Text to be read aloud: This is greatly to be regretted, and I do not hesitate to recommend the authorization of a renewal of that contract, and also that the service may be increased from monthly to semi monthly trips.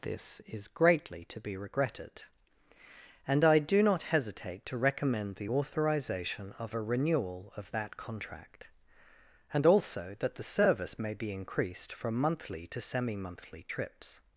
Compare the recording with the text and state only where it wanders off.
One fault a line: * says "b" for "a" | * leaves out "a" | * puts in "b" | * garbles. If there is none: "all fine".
all fine